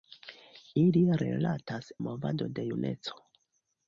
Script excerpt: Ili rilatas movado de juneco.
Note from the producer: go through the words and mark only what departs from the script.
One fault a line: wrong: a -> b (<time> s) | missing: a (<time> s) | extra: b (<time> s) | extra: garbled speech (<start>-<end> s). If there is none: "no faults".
no faults